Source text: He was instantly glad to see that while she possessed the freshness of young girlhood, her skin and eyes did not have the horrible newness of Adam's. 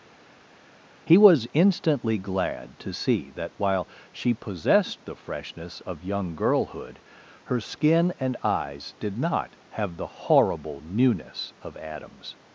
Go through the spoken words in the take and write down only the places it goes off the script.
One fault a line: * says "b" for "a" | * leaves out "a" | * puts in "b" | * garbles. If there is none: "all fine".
all fine